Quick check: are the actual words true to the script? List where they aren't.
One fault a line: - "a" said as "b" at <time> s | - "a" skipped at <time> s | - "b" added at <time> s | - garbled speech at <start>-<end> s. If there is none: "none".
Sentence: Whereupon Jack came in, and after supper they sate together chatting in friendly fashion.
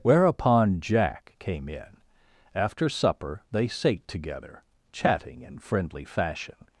- "and" skipped at 2.0 s